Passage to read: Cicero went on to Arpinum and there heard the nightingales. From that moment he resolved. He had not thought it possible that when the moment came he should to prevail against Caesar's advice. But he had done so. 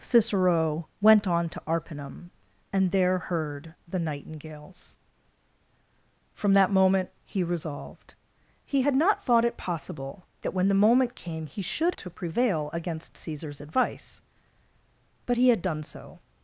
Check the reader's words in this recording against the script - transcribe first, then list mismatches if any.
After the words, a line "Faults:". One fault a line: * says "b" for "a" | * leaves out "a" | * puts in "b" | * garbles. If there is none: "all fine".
Cicero went on to Arpinum and there heard the nightingales. From that moment he resolved. He had not thought it possible that when the moment came he should to prevail against Caesar's advice. But he had done so.
Faults:
all fine